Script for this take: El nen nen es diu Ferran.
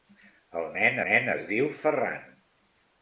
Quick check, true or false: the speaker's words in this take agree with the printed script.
true